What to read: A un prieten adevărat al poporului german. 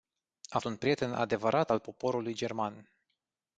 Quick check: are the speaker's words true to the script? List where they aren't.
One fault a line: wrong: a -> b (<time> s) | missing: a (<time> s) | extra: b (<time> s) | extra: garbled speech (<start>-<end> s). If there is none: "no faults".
no faults